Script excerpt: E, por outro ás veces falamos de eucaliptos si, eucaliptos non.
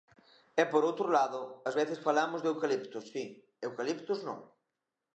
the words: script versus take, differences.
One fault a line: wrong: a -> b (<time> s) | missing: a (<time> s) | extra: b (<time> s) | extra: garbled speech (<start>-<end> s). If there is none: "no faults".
extra: lado (1.2 s)